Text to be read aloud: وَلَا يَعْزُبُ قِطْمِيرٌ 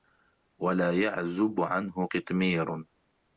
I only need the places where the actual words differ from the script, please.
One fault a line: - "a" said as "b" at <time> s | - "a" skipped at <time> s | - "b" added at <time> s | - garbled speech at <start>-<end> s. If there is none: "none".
- "عَنْهُ" added at 1.6 s